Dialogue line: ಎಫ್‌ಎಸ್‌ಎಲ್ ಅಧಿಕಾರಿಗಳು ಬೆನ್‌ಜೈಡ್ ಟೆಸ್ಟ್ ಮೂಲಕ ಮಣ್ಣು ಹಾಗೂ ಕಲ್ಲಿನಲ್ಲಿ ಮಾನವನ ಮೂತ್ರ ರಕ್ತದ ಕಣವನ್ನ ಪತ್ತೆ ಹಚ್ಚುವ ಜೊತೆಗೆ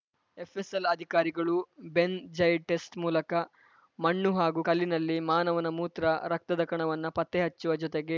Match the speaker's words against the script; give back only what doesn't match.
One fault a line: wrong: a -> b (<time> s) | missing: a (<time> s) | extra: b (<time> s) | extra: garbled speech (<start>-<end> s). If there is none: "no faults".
no faults